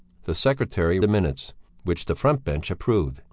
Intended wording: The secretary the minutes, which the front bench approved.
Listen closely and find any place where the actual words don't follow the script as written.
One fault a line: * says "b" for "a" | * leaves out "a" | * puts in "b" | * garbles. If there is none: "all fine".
all fine